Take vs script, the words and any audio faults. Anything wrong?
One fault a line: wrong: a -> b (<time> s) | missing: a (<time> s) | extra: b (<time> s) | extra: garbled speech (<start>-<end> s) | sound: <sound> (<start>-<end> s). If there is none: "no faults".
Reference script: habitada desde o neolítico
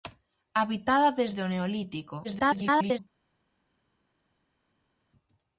extra: garbled speech (2.2-3.0 s)